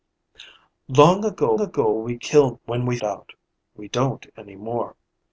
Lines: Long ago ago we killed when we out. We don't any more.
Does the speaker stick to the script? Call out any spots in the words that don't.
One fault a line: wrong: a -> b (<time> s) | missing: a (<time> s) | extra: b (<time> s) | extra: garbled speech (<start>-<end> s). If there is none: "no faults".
no faults